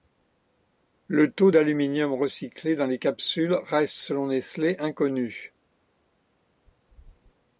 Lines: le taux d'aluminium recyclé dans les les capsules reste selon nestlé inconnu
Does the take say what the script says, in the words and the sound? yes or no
no